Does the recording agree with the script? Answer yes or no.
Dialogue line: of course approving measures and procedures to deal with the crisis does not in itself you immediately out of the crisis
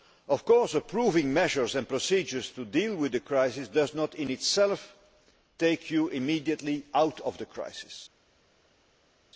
no